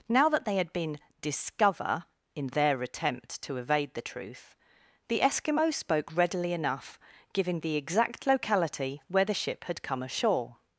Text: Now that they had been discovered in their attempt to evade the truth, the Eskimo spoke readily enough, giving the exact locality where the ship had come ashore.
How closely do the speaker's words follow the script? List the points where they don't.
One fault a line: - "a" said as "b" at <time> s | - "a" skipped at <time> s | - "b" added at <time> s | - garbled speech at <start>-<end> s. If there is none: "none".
- "discovered" said as "discover" at 1.2 s